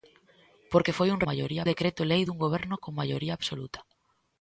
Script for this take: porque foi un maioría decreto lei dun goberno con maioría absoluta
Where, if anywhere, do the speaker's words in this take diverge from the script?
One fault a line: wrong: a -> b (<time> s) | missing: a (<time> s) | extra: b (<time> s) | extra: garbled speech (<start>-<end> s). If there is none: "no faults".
no faults